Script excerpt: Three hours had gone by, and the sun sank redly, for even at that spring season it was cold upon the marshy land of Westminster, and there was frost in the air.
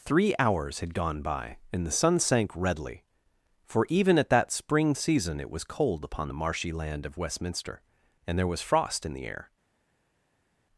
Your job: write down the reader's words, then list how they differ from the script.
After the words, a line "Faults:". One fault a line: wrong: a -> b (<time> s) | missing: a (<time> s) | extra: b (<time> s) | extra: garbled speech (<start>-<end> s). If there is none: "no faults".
Three hours had gone by, and the sun sank redly, for even at that spring season it was cold upon the marshy land of Westminster, and there was frost in the air.
Faults:
no faults